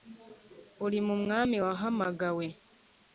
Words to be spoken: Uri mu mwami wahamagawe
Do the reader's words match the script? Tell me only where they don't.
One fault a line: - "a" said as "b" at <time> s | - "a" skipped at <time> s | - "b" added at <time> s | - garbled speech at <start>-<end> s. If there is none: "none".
none